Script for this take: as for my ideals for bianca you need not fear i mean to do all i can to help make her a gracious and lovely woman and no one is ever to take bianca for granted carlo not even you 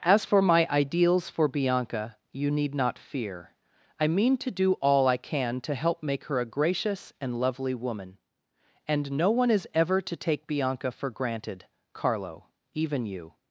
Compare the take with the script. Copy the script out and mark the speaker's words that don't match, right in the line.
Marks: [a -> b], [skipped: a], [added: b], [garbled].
as for my ideals for bianca you need not fear i mean to do all i can to help make her a gracious and lovely woman and no one is ever to take bianca for granted carlo [skipped: not] even you